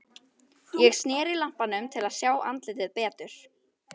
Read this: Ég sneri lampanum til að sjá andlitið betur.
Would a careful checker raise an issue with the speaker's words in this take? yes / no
no